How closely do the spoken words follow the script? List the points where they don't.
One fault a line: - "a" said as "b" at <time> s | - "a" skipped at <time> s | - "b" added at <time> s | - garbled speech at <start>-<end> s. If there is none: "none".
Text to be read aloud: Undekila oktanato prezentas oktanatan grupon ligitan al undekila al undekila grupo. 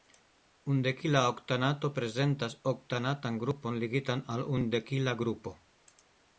- "al undekila" skipped at 5.2 s